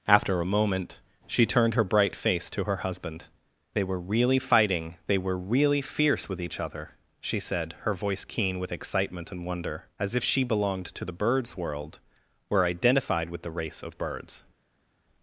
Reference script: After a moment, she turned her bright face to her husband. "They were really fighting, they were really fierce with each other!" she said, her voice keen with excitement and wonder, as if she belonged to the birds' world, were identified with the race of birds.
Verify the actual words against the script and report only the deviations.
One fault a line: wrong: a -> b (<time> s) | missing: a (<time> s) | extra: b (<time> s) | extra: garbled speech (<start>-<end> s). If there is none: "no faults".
no faults